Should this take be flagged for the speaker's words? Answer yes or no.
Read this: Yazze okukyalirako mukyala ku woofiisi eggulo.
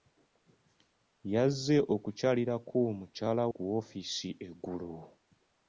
no